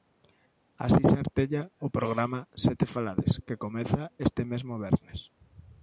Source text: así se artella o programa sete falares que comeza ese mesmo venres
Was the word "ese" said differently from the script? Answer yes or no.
yes